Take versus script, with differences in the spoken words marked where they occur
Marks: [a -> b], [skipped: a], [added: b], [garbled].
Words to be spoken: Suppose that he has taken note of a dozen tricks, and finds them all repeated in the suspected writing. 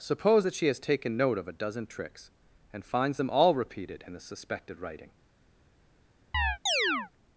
Suppose that [he -> she] has taken note of a dozen tricks, and finds them all repeated in the suspected writing.